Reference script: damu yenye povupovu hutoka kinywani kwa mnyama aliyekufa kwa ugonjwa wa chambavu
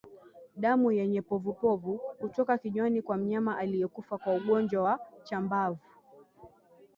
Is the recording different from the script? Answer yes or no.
no